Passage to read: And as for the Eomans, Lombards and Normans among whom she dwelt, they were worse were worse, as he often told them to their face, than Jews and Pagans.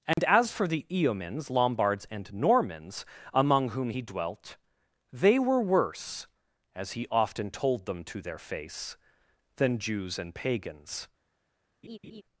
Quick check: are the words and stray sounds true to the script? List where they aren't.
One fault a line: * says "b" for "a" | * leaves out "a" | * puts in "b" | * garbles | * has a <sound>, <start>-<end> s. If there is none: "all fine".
* has a dropout, 0.1-0.2 s
* says "he" for "she"
* leaves out "were worse"
* has a laugh, 11.8-12.2 s